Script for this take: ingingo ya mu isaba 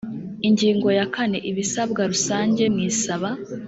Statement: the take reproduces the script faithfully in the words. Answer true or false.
false